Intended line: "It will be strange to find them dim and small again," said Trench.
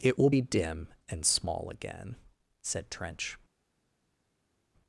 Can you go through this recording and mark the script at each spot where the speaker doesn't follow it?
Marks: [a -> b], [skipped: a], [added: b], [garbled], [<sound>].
"It will be [skipped: strange to find them] dim and small again," said Trench.